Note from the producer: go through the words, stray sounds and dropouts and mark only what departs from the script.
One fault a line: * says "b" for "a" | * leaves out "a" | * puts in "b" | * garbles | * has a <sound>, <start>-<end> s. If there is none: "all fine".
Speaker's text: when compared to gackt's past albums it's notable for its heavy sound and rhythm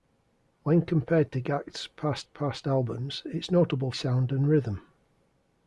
* puts in "past"
* leaves out "for its heavy"